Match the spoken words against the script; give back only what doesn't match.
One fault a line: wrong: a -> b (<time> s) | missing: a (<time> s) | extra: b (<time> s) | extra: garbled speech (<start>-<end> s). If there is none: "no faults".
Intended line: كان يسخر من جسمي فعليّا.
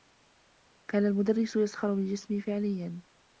extra: المدرّس (1.1 s)